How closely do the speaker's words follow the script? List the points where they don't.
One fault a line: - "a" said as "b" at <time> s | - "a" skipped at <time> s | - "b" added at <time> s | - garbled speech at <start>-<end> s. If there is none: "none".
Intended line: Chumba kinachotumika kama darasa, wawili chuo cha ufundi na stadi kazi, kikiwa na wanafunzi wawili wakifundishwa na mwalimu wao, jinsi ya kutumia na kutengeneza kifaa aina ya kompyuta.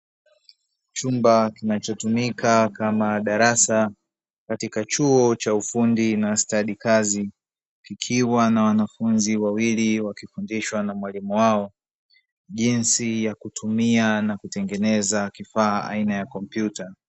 - "wawili" said as "katika" at 4.5 s